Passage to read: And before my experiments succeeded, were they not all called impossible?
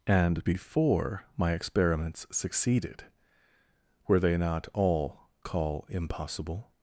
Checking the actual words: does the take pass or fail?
fail